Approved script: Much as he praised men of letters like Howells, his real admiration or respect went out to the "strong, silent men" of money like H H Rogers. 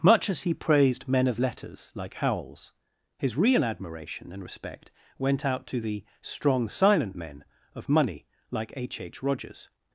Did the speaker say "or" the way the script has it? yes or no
no